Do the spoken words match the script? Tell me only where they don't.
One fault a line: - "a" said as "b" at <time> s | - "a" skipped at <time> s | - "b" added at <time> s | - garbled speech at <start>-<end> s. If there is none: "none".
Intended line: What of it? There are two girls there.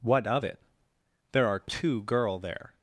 - "girls" said as "girl" at 2.0 s